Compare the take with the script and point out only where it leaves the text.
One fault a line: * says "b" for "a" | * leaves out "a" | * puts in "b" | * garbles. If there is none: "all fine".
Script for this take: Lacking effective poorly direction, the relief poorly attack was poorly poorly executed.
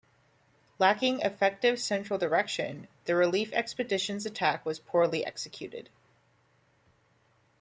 * says "central" for "poorly"
* says "expedition's" for "poorly"
* leaves out "poorly"